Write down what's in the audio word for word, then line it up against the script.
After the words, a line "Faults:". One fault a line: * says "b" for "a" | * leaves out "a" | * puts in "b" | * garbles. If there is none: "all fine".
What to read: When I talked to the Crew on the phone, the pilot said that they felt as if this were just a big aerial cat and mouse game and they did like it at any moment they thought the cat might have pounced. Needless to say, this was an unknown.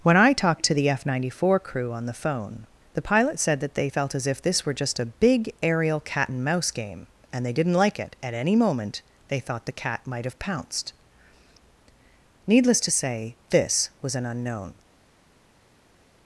When I talked to the F ninety four crew on the phone, the pilot said that they felt as if this were just a big aerial cat and mouse game and they didn't like it at any moment they thought the cat might have pounced. Needless to say, this was an unknown.
Faults:
* puts in "F ninety four"
* says "didn't" for "did"